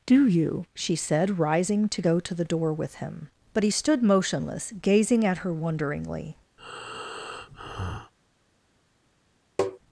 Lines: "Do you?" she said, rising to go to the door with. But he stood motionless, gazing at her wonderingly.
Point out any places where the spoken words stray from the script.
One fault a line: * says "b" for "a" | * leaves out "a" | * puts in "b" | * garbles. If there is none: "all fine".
* puts in "him"